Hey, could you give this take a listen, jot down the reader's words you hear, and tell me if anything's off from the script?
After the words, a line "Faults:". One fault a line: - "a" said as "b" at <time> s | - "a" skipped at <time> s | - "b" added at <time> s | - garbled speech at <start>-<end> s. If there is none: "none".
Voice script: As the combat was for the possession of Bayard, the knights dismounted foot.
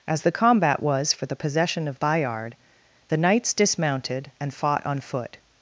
As the combat was for the possession of Bayard, the knights dismounted and fought on foot.
Faults:
- "and fought on" added at 4.4 s